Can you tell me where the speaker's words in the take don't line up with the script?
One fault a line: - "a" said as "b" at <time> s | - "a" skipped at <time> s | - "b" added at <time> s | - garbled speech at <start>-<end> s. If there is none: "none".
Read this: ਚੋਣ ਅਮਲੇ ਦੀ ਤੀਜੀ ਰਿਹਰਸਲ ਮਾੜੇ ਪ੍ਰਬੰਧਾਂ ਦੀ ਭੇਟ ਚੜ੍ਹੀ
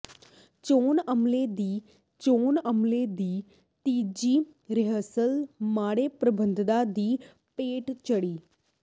- "ਚੋਣ ਅਮਲੇ ਦੀ" added at 2.2 s